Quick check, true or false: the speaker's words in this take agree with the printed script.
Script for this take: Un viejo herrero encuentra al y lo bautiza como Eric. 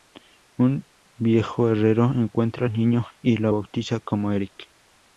false